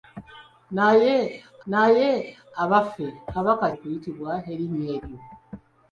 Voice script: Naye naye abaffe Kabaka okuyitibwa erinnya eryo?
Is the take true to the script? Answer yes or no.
yes